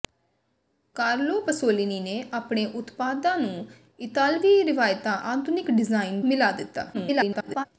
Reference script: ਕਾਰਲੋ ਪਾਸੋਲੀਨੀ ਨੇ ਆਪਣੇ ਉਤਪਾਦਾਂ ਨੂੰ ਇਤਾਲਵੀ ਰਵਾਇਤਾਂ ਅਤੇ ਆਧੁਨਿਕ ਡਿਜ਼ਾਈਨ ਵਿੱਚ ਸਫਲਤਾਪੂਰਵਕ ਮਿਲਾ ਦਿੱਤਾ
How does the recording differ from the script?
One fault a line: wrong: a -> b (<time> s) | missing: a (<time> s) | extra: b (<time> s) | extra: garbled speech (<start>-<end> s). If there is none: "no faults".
missing: ਅਤੇ (5.2 s)
missing: ਵਿੱਚ ਸਫਲਤਾਪੂਰਵਕ (6.2 s)
extra: garbled speech (6.9-7.7 s)